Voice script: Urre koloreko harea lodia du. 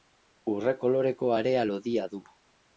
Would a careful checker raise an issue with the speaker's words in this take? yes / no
no